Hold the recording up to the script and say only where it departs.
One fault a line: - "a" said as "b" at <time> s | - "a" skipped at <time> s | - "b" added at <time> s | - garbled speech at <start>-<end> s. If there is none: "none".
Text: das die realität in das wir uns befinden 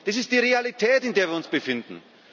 - "ist" added at 0.1 s
- "das" said as "der" at 1.1 s